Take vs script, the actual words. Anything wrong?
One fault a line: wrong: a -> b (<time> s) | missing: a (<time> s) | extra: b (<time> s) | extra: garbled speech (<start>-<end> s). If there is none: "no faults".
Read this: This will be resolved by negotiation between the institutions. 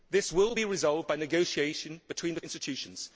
no faults